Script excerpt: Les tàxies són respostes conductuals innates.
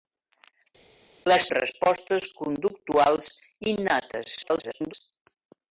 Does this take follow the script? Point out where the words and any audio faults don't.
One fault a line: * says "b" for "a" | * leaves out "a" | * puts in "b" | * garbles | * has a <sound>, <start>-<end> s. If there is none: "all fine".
* leaves out "tàxies són"
* garbles